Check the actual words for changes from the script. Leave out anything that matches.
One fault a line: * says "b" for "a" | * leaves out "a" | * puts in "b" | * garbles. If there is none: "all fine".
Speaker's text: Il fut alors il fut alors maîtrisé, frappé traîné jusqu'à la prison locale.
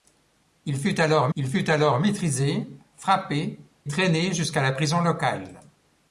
all fine